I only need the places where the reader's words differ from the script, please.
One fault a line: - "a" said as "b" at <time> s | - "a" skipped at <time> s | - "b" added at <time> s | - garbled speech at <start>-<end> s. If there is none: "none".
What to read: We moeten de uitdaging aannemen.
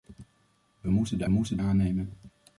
- "uitdaging" said as "moeten" at 1.3 s